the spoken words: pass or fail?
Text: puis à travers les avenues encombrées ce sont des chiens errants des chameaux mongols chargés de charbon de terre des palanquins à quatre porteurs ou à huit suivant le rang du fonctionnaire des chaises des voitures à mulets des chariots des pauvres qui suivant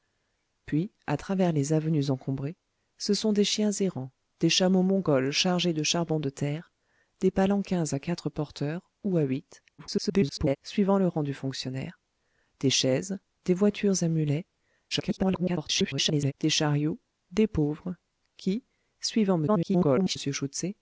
fail